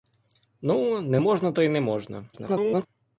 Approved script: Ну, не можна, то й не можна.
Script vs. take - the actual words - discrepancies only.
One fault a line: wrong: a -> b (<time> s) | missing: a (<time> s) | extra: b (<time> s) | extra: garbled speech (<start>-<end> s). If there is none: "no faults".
extra: garbled speech (2.3-2.9 s)